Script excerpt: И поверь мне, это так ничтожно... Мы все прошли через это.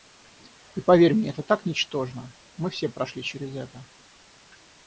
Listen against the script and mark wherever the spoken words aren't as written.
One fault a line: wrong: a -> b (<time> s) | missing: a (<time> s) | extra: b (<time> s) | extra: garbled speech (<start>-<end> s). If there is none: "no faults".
no faults